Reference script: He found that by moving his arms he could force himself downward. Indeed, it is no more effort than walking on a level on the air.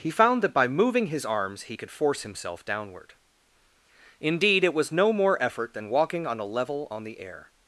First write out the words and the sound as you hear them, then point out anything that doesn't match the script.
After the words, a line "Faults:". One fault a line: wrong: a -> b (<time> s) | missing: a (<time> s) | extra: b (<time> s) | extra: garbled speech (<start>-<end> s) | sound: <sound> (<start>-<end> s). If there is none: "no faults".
He found that by moving his arms he could force himself downward. Indeed, it was no more effort than walking on a level on the air.
Faults:
wrong: is -> was (4.7 s)